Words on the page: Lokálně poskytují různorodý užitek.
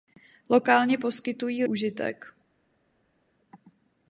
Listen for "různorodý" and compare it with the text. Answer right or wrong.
wrong